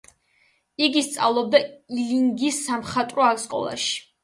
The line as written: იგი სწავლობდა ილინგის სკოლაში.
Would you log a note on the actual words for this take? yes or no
yes